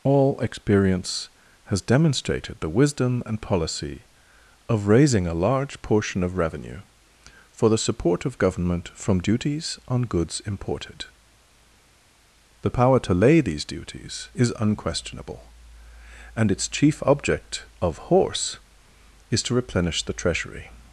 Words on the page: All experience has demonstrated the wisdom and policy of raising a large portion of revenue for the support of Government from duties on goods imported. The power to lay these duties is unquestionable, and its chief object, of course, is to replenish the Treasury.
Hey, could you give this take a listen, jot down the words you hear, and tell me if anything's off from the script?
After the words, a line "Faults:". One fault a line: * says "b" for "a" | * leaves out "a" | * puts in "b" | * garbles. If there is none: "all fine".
All experience has demonstrated the wisdom and policy of raising a large portion of revenue for the support of Government from duties on goods imported. The power to lay these duties is unquestionable, and its chief object, of horse, is to replenish the Treasury.
Faults:
* says "horse" for "course"